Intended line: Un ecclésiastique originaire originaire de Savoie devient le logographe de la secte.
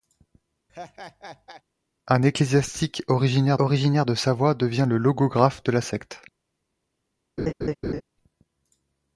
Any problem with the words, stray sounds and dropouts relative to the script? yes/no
yes